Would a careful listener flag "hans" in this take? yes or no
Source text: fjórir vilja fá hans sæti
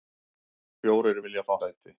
yes